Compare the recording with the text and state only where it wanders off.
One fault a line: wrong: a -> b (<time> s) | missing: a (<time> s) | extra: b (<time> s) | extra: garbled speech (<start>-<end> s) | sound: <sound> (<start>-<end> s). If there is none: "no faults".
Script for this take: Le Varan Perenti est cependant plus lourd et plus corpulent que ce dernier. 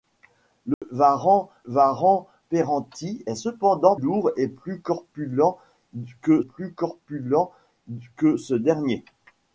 sound: dropout (0.7-0.8 s)
extra: Varan (1.6 s)
extra: lourd et (4.0 s)
wrong: lourd et -> corpulent que (4.8 s)